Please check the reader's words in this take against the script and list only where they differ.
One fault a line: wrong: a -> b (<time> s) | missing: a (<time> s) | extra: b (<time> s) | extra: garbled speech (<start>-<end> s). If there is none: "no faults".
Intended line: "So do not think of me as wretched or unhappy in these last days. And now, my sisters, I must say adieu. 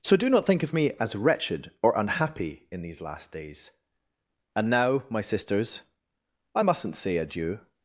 wrong: must -> mustn't (6.6 s)